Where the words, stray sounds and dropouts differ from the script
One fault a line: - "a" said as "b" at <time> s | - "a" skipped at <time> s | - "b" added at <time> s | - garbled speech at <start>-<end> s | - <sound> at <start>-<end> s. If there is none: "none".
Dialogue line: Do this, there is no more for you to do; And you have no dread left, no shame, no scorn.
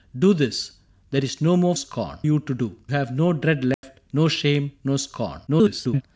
- "for" said as "scorn" at 1.7 s
- "And you" skipped at 2.8 s
- dropout at 3.7-3.8 s
- garbled speech at 5.5-6.0 s